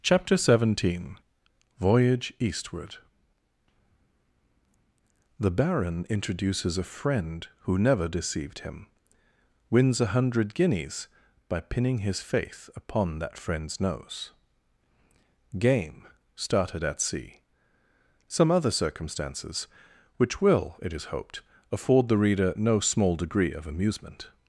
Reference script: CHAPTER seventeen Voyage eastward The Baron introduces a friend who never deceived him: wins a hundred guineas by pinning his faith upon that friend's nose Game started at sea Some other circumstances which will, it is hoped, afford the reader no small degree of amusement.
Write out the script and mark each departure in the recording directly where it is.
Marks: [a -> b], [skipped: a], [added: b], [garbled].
CHAPTER seventeen Voyage eastward The Baron introduces a friend who never deceived him: wins a hundred guineas by pinning his faith upon that friend's nose Game started at sea Some other circumstances which will, it is hoped, afford the reader no small degree of amusement.